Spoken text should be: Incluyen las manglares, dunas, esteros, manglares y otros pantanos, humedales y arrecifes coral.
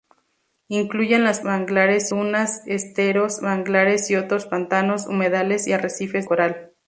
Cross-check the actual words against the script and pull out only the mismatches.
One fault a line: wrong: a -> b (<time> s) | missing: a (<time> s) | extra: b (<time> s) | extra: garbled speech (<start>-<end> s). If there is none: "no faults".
no faults